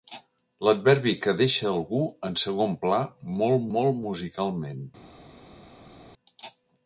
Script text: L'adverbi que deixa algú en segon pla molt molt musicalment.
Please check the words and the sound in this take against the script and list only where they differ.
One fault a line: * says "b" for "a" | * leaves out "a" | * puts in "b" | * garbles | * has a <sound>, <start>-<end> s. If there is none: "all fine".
all fine